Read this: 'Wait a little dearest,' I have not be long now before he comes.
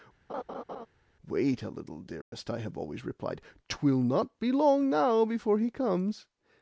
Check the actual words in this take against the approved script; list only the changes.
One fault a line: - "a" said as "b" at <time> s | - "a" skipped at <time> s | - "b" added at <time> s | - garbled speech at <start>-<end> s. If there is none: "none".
- "always replied Twill" added at 2.8 s